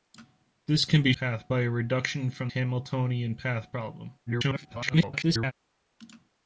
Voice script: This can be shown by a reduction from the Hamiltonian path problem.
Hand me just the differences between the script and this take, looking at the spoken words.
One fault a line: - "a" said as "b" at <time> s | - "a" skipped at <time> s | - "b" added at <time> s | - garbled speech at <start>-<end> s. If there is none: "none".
- "shown" said as "path" at 1.1 s
- "the" skipped at 2.5 s
- garbled speech at 4.3-5.5 s